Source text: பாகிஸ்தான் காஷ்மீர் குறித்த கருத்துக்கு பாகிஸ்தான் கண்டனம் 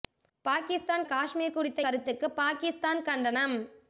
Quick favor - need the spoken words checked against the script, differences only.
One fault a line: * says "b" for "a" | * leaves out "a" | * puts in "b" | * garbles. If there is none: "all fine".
all fine